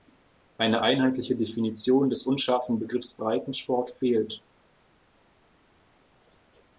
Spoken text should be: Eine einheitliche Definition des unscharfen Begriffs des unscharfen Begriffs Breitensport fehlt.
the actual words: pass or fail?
fail